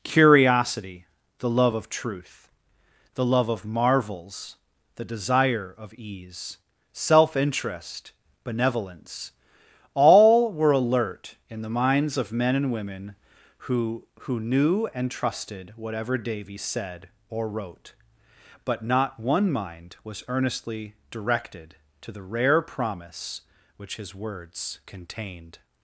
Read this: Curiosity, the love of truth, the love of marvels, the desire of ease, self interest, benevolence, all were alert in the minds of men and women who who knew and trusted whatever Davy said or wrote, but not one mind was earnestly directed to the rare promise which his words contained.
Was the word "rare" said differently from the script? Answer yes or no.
no